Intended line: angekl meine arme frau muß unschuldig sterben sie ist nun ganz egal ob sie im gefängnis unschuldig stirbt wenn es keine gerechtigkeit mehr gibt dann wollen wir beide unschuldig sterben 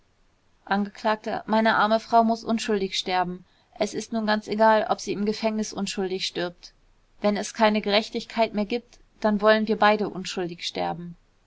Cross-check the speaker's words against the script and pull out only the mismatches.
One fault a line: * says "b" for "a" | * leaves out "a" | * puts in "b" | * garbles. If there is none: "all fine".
* says "es" for "sie"